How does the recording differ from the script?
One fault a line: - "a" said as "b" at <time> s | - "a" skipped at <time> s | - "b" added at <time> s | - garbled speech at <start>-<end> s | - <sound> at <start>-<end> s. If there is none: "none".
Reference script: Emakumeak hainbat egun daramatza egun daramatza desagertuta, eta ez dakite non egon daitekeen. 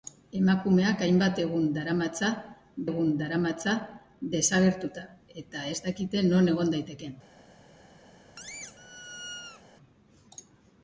- squeak at 8.4-9.6 s